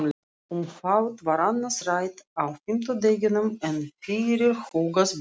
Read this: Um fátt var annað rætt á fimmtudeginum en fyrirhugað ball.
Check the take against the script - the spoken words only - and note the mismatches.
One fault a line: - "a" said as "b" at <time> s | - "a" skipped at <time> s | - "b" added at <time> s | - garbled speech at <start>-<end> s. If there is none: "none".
none